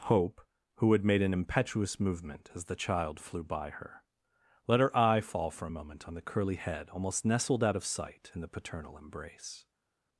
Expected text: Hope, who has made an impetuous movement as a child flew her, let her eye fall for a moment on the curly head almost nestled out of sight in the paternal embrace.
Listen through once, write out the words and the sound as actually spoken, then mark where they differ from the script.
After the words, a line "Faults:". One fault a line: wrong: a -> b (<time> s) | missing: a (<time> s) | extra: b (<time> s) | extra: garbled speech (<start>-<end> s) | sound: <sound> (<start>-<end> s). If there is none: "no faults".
Hope, who had made an impetuous movement as the child flew by her, let her eye fall for a moment on the curly head almost nestled out of sight in the paternal embrace.
Faults:
wrong: has -> had (0.9 s)
wrong: a -> the (2.6 s)
extra: by (3.4 s)